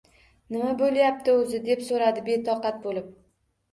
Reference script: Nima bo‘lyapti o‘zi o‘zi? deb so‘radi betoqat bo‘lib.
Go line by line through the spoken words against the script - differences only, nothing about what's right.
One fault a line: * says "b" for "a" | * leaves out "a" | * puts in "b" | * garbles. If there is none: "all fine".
* leaves out "o‘zi"